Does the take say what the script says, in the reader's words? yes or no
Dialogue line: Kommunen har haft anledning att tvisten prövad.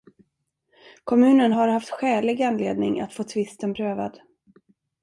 no